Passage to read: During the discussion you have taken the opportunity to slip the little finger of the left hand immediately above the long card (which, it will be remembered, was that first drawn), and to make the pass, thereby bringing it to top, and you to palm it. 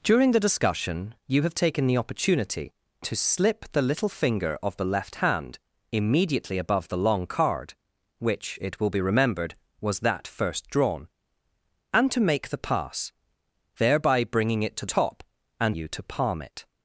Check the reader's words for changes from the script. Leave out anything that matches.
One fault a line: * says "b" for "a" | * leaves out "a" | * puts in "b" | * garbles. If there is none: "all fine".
all fine